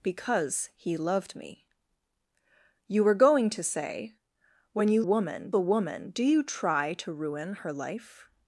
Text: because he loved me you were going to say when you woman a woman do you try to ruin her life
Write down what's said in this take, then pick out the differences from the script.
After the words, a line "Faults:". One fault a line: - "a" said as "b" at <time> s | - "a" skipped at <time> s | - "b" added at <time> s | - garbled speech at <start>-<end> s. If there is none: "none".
because he loved me you were going to say when you woman a woman do you try to ruin her life
Faults:
none